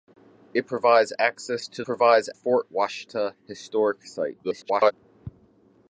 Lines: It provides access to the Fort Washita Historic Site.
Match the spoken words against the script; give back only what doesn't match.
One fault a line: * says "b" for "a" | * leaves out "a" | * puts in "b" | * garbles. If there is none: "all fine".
* says "provides" for "the"
* garbles